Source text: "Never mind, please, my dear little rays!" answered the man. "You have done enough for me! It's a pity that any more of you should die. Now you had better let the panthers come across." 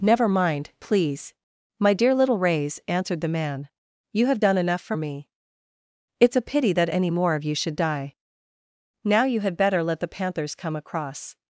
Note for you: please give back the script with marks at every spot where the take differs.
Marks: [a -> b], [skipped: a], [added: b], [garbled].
"Never mind, please, my dear little rays!" answered the man. "You have done enough for me! It's a pity that any more of you should die. Now you had better let the panthers come across."